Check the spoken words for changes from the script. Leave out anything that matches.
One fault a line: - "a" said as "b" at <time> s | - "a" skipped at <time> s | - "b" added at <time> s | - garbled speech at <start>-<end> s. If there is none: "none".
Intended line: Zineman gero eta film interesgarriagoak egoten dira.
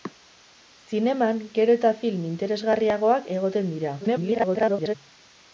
- garbled speech at 4.0-5.0 s